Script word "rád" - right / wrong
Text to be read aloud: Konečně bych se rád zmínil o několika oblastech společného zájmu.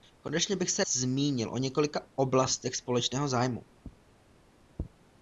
wrong